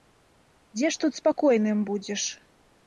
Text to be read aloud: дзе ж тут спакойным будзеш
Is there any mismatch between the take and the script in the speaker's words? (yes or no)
no